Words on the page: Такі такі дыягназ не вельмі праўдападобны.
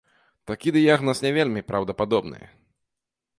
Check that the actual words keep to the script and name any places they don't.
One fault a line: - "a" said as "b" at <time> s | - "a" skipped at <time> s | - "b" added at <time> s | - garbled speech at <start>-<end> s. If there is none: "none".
- "такі" skipped at 0.7 s